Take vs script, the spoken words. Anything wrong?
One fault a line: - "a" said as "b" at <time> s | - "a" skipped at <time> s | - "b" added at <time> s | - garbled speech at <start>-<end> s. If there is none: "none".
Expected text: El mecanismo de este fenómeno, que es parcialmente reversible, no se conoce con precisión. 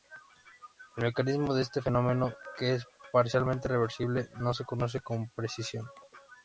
none